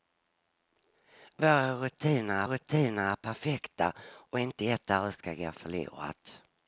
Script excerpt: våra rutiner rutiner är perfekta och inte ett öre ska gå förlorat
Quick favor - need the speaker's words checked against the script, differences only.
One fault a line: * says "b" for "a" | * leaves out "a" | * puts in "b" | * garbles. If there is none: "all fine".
all fine